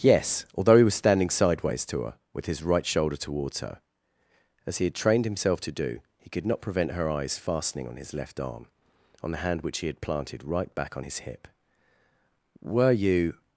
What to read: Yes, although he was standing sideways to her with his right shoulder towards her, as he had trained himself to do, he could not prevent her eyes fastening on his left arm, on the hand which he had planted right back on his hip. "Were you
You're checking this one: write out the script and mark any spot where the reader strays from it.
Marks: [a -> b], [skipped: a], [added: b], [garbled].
Yes, although he was standing sideways to her with his right shoulder towards her, as he had trained himself to do, he could not prevent her eyes fastening on his left arm, on the hand which he had planted right back on his hip. "Were you